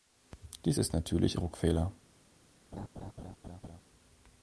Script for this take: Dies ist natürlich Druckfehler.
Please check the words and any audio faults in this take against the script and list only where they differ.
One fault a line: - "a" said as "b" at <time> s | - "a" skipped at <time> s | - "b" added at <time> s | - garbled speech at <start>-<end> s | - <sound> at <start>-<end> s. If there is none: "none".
- laugh at 2.7-3.8 s